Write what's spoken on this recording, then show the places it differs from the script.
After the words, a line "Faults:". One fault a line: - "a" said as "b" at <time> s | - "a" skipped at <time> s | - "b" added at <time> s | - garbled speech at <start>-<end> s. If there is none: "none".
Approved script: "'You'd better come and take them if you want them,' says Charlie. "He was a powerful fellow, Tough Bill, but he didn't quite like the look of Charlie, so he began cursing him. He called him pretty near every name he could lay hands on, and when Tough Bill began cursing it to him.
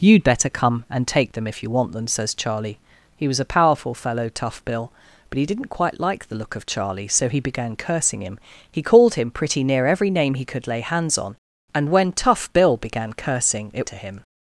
"'You'd better come and take them if you want them,' says Charlie. "He was a powerful fellow, Tough Bill, but he didn't quite like the look of Charlie, so he began cursing him. He called him pretty near every name he could lay hands on, and when Tough Bill began cursing it to him.
Faults:
none